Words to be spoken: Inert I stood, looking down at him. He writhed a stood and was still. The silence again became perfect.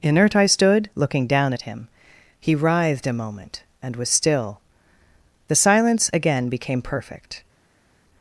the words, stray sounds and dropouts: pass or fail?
fail